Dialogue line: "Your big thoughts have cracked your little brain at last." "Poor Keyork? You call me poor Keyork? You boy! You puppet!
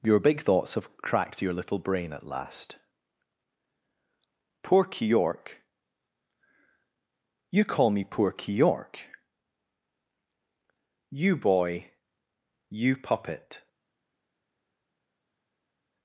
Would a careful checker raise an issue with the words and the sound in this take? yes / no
no